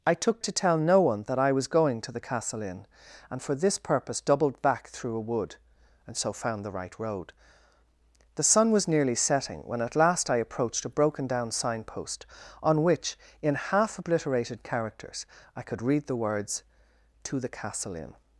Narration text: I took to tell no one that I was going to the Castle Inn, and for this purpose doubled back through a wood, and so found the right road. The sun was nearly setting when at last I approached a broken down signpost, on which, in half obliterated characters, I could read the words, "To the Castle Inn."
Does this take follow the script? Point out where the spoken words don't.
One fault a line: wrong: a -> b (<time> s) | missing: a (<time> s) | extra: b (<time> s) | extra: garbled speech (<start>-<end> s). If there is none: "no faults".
no faults